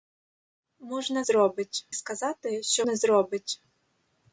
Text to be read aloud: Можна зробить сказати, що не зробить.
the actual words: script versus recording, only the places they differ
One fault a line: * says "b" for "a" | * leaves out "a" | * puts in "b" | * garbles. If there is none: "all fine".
all fine